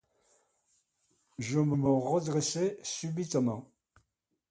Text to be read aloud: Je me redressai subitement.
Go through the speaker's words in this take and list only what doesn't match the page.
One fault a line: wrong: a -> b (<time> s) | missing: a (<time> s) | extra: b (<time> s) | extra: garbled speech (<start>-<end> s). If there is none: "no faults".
extra: me (1.7 s)